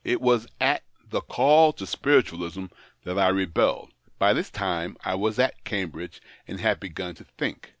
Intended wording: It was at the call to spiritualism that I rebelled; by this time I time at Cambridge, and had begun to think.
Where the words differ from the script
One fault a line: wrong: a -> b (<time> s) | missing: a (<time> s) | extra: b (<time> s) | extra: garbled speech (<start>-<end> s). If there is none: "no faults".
wrong: time -> was (5.2 s)